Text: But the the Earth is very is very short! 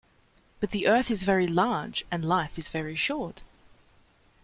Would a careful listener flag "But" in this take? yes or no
no